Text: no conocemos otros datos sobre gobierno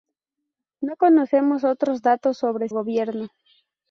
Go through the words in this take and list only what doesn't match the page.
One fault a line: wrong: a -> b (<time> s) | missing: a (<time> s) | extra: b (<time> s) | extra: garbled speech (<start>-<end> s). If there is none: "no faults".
no faults